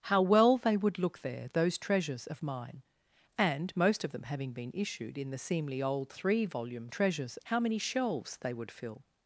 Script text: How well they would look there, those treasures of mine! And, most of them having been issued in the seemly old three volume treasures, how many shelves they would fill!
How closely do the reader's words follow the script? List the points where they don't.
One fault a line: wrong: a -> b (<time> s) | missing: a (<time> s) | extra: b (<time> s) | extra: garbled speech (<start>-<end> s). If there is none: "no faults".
no faults